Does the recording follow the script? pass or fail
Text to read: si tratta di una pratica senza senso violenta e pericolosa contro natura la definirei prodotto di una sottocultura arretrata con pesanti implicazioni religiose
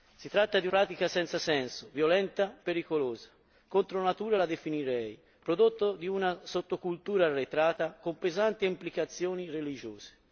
fail